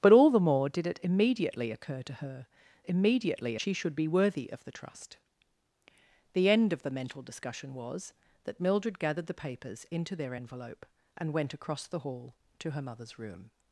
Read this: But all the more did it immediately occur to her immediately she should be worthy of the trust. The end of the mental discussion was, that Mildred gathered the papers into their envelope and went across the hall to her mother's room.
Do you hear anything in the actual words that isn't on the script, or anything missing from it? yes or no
no